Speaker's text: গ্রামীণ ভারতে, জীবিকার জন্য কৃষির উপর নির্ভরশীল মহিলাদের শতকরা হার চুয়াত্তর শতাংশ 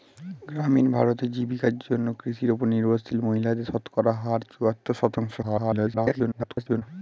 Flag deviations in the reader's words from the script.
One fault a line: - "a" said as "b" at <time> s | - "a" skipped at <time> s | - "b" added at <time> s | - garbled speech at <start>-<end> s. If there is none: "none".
- garbled speech at 5.4-6.8 s